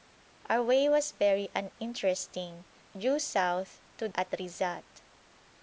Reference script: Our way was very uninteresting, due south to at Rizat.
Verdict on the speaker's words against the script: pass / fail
pass